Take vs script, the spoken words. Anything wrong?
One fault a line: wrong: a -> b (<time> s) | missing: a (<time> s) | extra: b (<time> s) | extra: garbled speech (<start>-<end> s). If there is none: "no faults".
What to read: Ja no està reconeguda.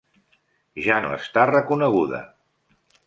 no faults